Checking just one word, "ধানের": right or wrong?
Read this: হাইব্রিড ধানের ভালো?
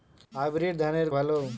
right